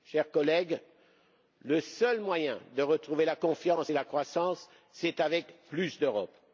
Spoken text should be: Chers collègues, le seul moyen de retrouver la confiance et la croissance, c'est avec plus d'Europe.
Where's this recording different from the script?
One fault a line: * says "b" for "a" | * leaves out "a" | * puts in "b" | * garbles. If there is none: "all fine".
all fine